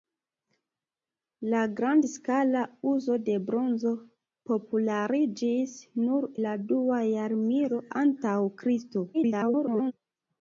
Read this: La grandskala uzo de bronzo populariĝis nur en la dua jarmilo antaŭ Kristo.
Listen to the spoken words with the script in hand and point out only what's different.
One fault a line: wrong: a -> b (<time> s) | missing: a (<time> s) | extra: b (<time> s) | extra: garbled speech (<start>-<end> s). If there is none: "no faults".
missing: en (6.3 s)
extra: garbled speech (9.1-9.9 s)